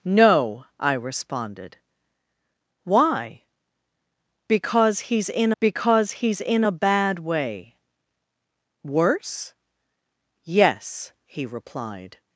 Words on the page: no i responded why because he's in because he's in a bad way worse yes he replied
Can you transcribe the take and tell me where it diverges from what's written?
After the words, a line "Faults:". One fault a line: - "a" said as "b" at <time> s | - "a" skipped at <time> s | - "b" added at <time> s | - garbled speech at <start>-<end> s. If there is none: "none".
no i responded why because he's in because he's in a bad way worse yes he replied
Faults:
none